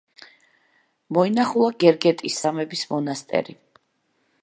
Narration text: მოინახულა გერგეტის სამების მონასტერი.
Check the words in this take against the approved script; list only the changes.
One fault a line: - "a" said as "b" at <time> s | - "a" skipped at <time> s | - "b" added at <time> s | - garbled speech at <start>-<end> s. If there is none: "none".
none